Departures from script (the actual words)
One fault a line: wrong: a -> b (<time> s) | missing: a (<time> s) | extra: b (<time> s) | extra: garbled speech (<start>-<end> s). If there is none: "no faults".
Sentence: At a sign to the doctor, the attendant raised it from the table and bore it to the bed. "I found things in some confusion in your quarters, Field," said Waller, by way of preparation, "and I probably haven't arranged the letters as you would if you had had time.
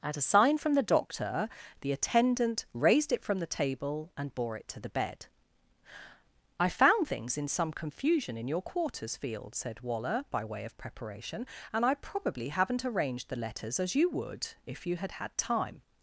wrong: to -> from (0.6 s)